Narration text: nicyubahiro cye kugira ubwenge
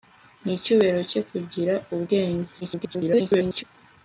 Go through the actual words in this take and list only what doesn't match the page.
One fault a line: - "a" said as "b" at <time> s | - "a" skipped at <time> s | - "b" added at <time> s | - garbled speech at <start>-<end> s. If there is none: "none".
- garbled speech at 2.6-3.6 s